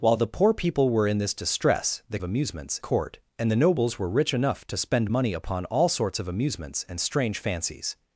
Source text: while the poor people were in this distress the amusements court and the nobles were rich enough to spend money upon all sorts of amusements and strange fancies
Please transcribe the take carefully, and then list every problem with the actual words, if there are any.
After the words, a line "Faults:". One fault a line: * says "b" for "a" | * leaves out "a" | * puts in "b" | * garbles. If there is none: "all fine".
while the poor people were in this distress the amusements court and the nobles were rich enough to spend money upon all sorts of amusements and strange fancies
Faults:
all fine